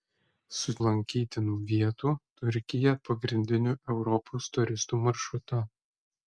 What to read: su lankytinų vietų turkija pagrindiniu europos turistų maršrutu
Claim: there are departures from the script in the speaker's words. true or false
false